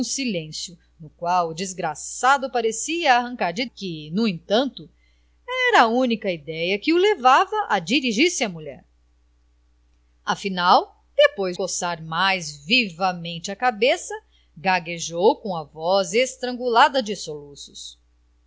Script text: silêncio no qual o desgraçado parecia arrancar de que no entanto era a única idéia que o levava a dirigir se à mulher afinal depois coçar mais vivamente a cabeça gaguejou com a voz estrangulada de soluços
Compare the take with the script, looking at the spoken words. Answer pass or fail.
pass